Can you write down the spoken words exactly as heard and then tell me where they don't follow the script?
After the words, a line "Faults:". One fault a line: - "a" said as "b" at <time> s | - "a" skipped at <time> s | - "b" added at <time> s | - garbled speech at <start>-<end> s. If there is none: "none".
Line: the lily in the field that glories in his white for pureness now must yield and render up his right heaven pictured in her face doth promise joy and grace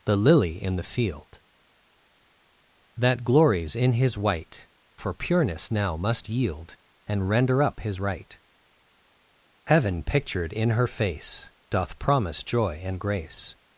the lily in the field that glories in his white for pureness now must yield and render up his right heaven pictured in her face doth promise joy and grace
Faults:
none